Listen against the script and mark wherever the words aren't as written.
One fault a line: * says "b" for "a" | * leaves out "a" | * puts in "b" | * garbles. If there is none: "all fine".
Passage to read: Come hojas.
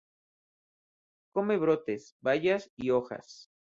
* puts in "brotes bayas y"